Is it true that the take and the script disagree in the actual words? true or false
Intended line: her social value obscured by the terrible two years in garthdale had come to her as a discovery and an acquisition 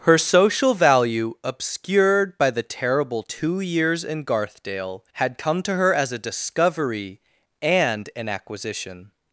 false